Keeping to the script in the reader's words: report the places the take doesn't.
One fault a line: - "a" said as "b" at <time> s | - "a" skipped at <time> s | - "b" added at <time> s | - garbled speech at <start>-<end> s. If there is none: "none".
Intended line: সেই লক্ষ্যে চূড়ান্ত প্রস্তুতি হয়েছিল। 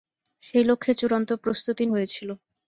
none